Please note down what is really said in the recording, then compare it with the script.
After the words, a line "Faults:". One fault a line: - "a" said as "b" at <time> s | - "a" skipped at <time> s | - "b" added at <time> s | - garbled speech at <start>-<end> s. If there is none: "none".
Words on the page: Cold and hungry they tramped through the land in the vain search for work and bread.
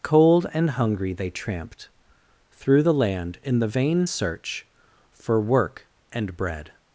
Cold and hungry they tramped through the land in the vain search for work and bread.
Faults:
none